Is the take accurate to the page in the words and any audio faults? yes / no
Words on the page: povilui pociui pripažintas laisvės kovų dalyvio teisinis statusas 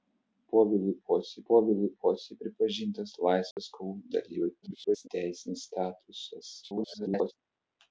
no